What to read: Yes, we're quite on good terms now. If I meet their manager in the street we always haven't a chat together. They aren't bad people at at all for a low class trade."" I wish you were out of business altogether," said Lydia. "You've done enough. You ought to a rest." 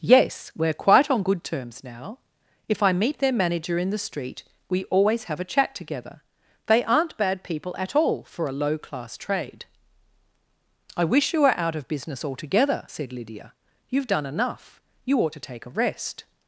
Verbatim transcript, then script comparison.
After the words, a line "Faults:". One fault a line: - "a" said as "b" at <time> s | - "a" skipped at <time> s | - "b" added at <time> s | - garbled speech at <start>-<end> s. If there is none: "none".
Yes, we're quite on good terms now. If I meet their manager in the street we always have a chat together. They aren't bad people at all for a low class trade."" I wish you were out of business altogether," said Lydia. "You've done enough. You ought to take a rest."
Faults:
- "haven't" said as "have" at 5.2 s
- "at" skipped at 8.0 s
- "take" added at 15.4 s